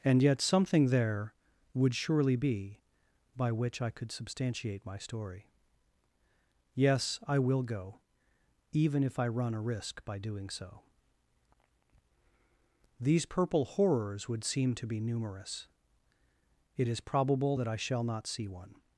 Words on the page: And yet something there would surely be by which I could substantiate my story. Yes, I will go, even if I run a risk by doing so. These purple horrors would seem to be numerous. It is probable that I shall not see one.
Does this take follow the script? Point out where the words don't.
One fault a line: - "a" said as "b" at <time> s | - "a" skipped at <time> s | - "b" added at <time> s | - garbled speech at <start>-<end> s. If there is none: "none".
none